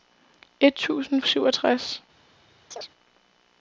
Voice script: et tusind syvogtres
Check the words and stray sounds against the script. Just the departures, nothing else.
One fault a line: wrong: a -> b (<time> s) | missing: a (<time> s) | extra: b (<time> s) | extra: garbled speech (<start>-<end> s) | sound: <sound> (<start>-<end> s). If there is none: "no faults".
sound: chirp (2.7-2.9 s)